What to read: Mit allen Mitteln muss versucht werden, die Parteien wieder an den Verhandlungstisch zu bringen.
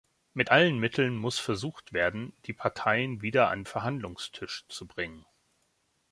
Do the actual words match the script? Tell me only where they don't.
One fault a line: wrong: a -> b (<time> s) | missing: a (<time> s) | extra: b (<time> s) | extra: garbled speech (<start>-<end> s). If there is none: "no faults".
missing: den (3.6 s)